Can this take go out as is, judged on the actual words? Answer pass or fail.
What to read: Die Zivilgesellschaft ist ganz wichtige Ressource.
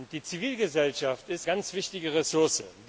pass